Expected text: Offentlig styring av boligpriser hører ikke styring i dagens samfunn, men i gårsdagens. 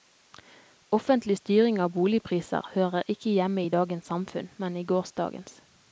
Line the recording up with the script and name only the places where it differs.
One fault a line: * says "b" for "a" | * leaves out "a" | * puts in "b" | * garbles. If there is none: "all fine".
* says "hjemme" for "styring"